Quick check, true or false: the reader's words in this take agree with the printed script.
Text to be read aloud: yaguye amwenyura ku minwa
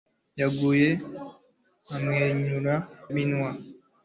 false